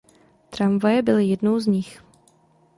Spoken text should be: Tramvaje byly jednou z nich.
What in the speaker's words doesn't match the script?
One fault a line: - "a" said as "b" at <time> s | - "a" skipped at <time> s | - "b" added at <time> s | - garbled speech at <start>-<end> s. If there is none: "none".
none